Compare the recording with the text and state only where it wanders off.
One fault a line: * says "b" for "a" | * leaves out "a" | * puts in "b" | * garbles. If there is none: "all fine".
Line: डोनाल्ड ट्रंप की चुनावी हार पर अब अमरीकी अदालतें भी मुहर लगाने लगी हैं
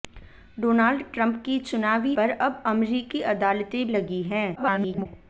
* leaves out "हार"
* leaves out "भी मुहर लगाने"
* garbles